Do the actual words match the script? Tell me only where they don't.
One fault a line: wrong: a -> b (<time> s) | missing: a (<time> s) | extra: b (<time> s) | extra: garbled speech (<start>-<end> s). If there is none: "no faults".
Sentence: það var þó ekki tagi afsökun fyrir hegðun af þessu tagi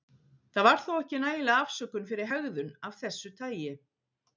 wrong: tagi -> nægileg (1.2 s)